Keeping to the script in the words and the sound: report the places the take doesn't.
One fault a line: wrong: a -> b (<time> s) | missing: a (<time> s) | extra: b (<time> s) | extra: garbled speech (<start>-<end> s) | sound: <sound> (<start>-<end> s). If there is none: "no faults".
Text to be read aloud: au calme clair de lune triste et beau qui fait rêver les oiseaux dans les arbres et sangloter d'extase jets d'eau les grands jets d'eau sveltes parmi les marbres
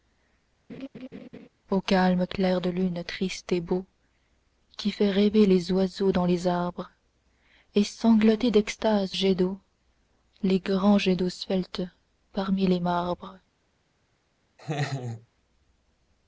sound: laugh (0.7-1.5 s)
sound: laugh (14.6-15.3 s)